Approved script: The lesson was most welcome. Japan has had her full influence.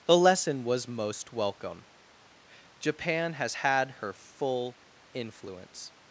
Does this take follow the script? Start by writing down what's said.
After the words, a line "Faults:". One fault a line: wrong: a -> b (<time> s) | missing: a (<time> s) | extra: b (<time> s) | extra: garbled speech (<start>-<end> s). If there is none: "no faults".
The lesson was most welcome. Japan has had her full influence.
Faults:
no faults